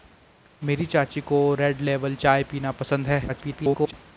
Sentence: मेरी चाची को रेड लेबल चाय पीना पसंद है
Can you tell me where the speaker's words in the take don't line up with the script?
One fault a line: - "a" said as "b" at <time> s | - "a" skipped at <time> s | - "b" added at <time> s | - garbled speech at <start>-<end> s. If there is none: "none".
- garbled speech at 3.3-3.9 s